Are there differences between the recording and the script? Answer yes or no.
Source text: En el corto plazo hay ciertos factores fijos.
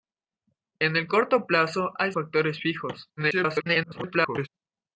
yes